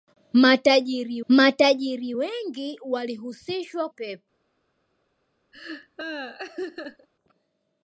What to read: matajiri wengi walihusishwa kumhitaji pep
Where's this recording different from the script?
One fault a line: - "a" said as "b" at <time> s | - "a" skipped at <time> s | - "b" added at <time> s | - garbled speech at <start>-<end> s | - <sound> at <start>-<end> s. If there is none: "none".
- "matajiri" added at 1.3 s
- "kumhitaji" skipped at 3.9 s
- laugh at 5.5-7.1 s